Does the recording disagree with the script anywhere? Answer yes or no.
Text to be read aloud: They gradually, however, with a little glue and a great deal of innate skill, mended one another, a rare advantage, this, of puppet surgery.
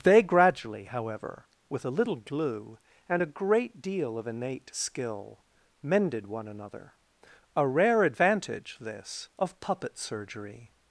no